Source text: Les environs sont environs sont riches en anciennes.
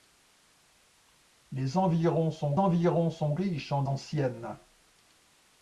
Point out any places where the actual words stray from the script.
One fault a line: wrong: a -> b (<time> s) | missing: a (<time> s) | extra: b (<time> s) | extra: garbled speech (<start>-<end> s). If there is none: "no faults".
no faults